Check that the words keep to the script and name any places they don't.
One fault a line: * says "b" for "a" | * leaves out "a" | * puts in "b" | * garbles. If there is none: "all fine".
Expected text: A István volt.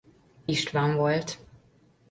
all fine